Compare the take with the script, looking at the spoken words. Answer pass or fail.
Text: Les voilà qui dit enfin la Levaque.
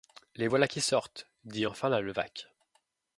fail